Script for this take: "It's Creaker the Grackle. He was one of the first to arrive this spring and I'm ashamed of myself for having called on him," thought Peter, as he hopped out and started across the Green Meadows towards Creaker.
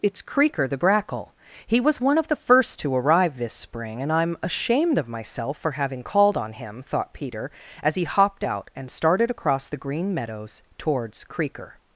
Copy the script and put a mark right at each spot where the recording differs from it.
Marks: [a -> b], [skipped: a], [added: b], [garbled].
"It's Creaker the Grackle. He was one of the first to arrive this spring and I'm ashamed of myself for having called on him," thought Peter, as he hopped out and started across the Green Meadows towards Creaker.